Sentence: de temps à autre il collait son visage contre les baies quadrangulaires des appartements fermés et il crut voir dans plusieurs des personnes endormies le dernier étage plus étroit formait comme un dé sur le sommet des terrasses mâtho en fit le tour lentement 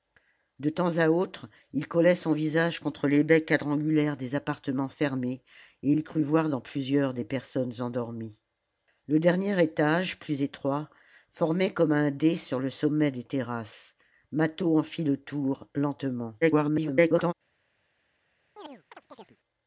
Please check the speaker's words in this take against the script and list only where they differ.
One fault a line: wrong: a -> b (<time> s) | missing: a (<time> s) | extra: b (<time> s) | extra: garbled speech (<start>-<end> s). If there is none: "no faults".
extra: garbled speech (16.4-17.3 s)